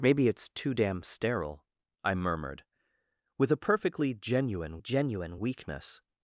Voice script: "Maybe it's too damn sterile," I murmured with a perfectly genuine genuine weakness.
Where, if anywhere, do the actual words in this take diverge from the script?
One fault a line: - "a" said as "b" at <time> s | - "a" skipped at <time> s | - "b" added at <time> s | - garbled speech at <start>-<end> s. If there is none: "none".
none